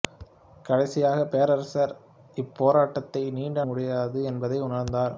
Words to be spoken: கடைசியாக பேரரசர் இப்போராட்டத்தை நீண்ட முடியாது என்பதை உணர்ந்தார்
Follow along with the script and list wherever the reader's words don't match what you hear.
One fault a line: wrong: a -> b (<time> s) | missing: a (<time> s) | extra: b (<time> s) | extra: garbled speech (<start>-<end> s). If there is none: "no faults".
no faults